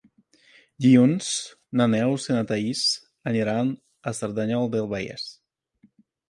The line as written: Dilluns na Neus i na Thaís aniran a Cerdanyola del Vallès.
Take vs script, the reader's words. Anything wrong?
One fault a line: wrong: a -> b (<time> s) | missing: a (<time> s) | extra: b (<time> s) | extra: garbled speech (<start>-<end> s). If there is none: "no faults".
no faults